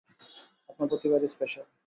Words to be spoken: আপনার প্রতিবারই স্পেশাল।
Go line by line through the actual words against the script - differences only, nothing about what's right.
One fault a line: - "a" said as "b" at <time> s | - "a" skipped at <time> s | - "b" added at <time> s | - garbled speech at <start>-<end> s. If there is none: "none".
none